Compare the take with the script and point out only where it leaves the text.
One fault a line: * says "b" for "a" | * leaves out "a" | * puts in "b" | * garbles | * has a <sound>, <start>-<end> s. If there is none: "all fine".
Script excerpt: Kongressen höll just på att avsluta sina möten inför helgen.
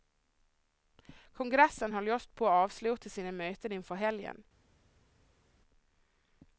all fine